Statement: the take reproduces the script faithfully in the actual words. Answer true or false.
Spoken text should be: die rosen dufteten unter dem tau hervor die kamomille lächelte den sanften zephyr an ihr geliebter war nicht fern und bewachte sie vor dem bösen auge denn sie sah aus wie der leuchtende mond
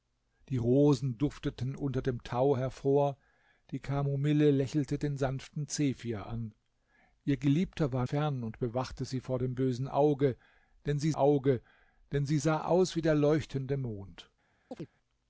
false